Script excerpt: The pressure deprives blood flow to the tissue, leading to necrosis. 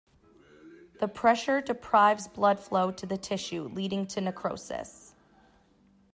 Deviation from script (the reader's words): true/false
false